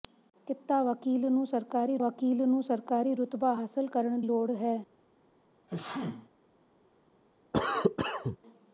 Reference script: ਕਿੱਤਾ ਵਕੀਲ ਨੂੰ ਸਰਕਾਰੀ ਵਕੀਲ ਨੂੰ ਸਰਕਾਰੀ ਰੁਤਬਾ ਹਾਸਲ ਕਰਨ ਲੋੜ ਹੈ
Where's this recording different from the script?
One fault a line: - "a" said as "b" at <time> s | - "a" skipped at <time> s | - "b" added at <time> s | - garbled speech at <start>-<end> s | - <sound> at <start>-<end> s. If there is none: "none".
- sneeze at 5.7-6.3 s
- cough at 7.5-8.4 s